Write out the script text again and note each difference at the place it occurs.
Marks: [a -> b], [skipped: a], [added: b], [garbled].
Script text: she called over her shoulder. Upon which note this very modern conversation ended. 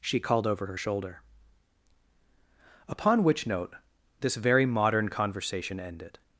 she called over her shoulder. Upon which note this very modern conversation ended.